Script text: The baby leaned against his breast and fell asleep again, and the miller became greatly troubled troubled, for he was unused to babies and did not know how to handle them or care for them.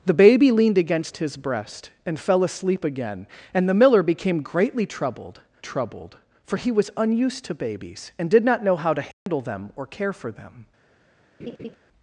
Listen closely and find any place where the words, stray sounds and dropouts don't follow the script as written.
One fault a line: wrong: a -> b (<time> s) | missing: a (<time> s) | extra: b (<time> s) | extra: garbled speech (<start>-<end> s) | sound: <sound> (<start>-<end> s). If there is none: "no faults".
sound: dropout (9.1-9.3 s)
sound: laugh (11.4-11.8 s)